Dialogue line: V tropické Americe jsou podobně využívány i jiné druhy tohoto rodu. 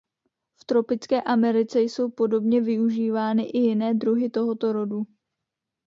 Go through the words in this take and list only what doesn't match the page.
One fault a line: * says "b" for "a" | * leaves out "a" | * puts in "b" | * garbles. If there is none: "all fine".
all fine